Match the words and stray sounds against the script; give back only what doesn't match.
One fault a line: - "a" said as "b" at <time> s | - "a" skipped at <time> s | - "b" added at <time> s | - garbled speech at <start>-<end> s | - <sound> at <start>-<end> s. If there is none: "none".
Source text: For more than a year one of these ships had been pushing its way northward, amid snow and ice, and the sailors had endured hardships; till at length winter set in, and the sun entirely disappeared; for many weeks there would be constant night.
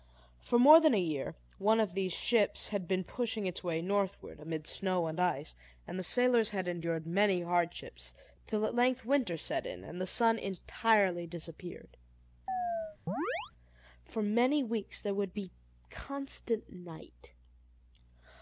- "many" added at 7.1 s
- chirp at 12.5-13.5 s